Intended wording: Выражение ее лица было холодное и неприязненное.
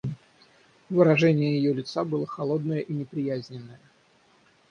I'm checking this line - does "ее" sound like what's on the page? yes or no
yes